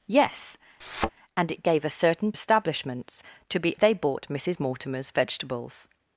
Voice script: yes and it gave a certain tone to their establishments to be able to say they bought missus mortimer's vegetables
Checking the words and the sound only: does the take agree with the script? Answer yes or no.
no